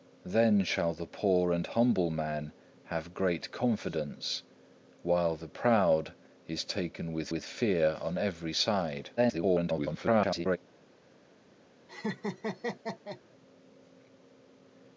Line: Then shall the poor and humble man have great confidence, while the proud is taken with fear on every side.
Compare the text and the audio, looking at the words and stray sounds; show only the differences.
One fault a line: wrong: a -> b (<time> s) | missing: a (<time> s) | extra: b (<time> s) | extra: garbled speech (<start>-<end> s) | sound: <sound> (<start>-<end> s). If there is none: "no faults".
extra: with (7.3 s)
extra: garbled speech (9.2-10.6 s)
sound: laugh (11.9-13.2 s)